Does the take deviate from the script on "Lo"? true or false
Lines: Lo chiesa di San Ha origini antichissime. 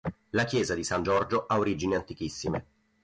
true